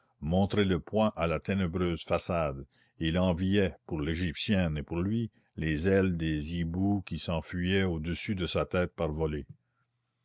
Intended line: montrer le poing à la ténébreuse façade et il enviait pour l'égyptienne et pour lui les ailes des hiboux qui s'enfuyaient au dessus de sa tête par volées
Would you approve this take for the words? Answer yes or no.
yes